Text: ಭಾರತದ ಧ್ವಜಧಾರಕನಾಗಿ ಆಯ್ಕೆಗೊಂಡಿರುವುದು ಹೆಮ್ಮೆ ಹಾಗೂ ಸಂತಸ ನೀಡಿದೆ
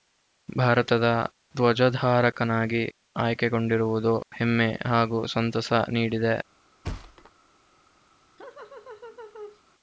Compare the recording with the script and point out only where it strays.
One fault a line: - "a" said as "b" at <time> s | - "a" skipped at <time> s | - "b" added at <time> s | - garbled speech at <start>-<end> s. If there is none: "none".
none